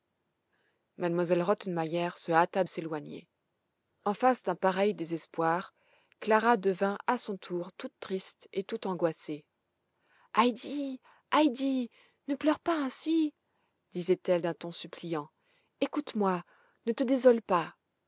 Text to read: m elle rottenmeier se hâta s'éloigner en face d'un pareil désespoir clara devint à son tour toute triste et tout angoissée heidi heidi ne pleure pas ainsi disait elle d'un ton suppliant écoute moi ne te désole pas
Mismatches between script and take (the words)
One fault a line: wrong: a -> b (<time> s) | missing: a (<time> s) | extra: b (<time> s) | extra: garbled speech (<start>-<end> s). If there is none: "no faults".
no faults